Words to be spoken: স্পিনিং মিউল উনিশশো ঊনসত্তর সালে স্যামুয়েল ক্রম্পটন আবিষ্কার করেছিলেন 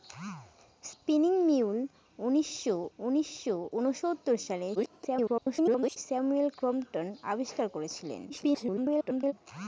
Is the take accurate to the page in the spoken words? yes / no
no